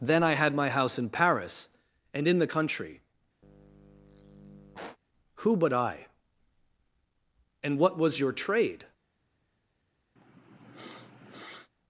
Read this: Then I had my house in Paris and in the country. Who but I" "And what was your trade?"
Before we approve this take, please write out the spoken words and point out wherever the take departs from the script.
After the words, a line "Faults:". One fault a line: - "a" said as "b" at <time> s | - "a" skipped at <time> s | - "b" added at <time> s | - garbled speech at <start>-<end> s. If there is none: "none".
Then I had my house in Paris and in the country. Who but I" "And what was your trade?"
Faults:
none